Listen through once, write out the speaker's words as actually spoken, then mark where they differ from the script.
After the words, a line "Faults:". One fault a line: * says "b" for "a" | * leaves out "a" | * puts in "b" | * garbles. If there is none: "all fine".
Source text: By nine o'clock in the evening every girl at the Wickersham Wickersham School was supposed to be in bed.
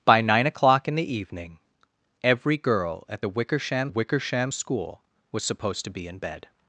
By nine o'clock in the evening every girl at the Wickersham Wickersham School was supposed to be in bed.
Faults:
all fine